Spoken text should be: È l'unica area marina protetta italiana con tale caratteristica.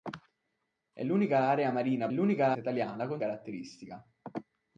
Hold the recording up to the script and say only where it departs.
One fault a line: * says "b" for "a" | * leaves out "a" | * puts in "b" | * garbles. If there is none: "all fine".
* says "l'unica" for "protetta"
* leaves out "tale"